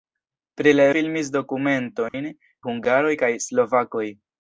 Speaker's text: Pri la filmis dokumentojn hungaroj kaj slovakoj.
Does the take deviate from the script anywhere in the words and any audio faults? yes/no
yes